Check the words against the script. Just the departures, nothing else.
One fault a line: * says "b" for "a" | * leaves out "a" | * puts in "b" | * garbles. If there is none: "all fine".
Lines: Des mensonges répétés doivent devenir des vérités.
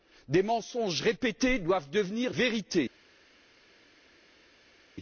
* leaves out "des"